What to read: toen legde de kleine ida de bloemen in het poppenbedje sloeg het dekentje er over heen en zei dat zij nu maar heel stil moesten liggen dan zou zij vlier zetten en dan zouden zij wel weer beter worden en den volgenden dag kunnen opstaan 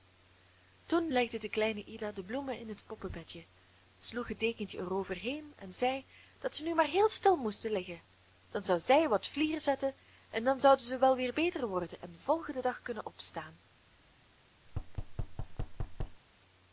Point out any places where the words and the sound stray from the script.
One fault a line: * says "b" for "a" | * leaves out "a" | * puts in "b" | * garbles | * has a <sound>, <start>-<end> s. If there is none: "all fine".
* puts in "wat"
* has a thud, 14.7-16.2 s